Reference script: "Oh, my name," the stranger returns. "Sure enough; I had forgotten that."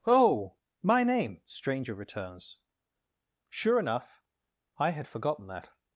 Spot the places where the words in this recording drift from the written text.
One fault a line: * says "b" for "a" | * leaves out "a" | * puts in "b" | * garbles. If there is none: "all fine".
* leaves out "the"